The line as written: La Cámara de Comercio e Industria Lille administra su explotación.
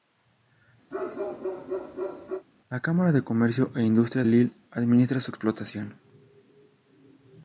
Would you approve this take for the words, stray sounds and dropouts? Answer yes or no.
no